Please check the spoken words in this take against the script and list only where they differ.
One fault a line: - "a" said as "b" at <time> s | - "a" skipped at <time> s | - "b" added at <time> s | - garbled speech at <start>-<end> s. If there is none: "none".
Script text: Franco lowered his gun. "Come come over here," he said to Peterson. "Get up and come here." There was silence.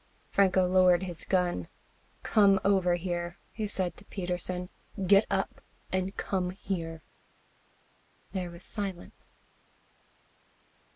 - "come" skipped at 2.6 s